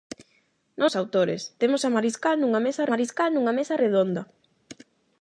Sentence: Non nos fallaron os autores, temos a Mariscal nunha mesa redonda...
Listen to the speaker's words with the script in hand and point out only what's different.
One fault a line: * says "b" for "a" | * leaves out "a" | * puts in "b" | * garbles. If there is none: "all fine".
* leaves out "nos fallaron"
* puts in "Mariscal nunha mesa"